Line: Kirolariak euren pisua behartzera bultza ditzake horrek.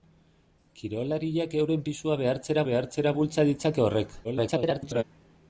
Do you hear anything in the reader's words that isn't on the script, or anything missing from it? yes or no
yes